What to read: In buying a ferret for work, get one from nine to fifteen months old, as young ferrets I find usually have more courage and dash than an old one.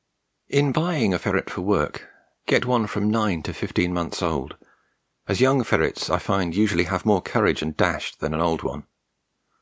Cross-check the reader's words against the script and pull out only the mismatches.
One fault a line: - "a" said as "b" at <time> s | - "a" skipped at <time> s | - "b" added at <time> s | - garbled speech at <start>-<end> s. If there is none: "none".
none